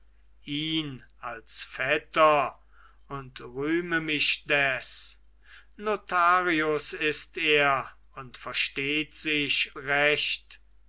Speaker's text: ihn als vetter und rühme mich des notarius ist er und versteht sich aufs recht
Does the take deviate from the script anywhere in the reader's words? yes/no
yes